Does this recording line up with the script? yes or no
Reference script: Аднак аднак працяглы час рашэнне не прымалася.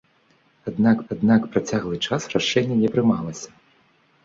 yes